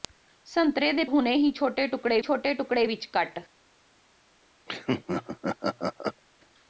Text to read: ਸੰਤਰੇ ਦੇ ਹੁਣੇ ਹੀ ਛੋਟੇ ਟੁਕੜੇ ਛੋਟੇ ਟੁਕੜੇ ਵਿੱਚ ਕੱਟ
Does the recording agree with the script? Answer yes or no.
yes